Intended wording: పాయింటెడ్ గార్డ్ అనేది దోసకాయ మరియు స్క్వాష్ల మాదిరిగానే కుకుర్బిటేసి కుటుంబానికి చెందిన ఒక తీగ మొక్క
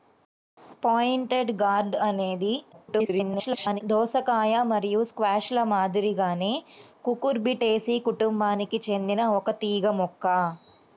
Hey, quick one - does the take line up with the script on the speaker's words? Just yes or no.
no